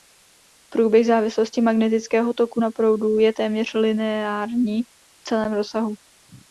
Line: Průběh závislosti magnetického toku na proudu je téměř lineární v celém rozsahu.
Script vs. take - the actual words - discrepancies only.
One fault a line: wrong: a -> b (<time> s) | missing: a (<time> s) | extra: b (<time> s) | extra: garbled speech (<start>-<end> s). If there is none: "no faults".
no faults